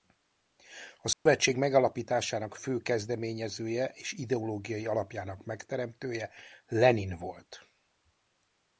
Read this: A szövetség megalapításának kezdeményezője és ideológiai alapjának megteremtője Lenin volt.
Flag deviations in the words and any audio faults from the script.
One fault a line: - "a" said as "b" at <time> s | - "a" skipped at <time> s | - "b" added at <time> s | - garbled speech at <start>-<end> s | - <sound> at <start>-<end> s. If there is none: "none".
- dropout at 1.1-1.3 s
- "fő" added at 2.5 s